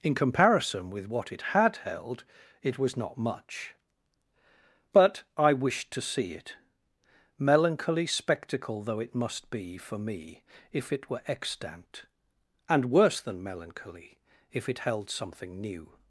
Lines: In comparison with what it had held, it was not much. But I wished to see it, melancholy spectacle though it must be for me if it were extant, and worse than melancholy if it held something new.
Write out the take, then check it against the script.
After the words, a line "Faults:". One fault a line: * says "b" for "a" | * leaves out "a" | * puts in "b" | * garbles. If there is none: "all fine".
In comparison with what it had held, it was not much. But I wished to see it, melancholy spectacle though it must be for me if it were extant, and worse than melancholy if it held something new.
Faults:
all fine